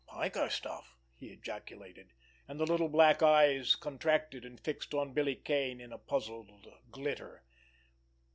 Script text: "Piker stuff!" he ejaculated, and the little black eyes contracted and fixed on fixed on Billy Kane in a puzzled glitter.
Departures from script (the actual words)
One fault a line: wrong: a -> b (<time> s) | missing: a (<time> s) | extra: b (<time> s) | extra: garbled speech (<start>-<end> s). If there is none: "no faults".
missing: fixed on (5.1 s)